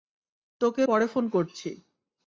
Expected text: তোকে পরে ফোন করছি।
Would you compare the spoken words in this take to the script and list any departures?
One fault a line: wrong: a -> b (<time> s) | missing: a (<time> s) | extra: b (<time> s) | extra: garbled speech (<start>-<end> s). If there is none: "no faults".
no faults